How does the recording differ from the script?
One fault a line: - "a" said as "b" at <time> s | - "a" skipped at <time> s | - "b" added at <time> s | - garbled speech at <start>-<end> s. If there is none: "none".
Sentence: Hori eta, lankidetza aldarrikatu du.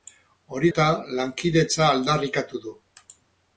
none